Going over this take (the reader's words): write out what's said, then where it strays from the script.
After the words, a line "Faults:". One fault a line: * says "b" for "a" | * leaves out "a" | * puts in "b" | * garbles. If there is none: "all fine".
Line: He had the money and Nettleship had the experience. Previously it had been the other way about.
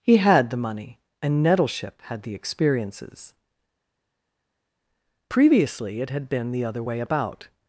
He had the money and Nettleship had the experiences. Previously it had been the other way about.
Faults:
* says "experiences" for "experience"